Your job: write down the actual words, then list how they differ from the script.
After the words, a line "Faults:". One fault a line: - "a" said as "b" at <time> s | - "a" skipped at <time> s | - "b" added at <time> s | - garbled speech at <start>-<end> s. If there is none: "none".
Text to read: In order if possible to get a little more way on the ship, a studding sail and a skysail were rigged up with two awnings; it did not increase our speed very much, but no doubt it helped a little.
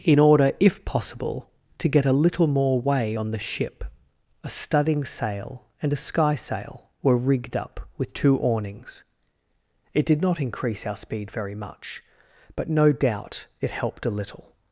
In order if possible to get a little more way on the ship, a studding sail and a skysail were rigged up with two awnings; it did not increase our speed very much, but no doubt it helped a little.
Faults:
none